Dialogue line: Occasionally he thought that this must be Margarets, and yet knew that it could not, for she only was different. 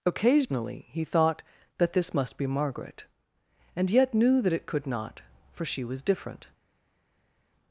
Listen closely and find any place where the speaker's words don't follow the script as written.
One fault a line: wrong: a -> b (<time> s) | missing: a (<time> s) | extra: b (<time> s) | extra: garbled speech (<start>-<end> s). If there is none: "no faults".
wrong: Margarets -> Margaret (2.5 s)
missing: only (5.8 s)